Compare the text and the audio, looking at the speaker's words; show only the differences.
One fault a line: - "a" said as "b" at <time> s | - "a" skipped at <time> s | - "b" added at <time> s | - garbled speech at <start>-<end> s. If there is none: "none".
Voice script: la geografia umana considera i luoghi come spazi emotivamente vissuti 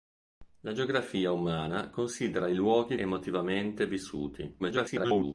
- "come spazi" skipped at 3.0 s
- garbled speech at 4.6-5.3 s